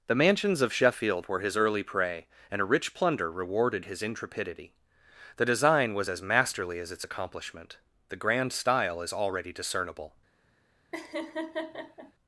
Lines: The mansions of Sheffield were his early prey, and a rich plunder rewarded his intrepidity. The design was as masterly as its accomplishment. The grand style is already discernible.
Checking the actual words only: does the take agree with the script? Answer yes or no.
yes